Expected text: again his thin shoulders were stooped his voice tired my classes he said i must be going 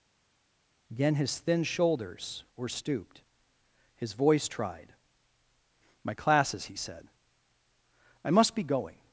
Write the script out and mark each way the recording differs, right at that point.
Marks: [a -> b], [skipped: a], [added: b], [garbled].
again his thin shoulders were stooped his voice [tired -> tried] my classes he said i must be going